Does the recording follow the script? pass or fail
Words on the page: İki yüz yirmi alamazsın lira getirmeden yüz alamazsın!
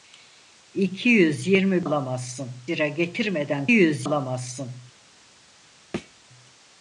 pass